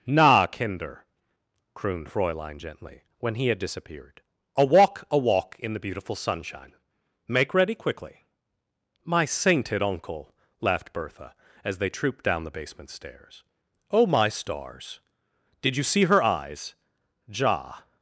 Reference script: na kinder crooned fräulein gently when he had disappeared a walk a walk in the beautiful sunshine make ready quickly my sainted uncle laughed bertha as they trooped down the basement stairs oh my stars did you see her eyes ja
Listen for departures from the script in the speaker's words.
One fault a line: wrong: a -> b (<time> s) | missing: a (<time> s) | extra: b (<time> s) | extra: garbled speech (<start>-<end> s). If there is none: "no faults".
no faults